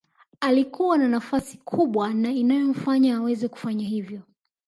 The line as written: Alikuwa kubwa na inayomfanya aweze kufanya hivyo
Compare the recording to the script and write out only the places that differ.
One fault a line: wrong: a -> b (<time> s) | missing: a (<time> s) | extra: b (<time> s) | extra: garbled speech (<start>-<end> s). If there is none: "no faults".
extra: na nafasi (1.0 s)